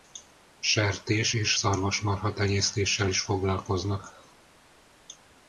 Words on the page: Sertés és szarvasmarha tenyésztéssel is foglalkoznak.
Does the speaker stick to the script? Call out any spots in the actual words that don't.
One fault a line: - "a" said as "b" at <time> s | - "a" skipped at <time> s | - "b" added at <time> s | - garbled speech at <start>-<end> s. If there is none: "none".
none